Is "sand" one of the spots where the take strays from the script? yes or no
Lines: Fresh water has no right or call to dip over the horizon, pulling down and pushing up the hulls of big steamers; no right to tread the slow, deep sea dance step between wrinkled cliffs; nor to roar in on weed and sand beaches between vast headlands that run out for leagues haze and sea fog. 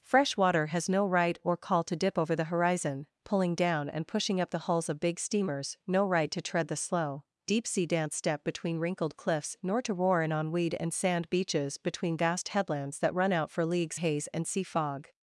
no